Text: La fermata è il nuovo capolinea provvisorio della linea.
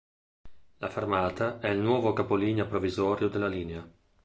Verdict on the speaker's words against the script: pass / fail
pass